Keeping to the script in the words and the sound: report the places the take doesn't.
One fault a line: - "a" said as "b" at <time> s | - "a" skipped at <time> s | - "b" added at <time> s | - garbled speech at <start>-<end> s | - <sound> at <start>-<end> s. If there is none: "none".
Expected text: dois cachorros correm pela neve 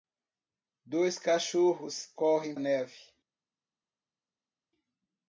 - "pela" skipped at 2.5 s